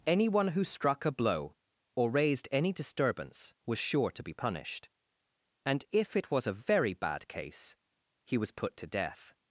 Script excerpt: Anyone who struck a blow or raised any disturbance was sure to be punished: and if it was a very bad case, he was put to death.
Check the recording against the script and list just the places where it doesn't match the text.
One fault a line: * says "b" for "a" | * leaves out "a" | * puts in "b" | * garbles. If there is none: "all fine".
all fine